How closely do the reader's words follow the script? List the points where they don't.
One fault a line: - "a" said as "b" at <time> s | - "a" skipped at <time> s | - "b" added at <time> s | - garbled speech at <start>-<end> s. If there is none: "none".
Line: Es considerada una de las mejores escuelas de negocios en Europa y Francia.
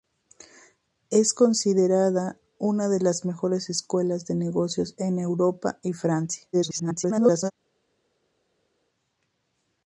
- garbled speech at 6.5-7.5 s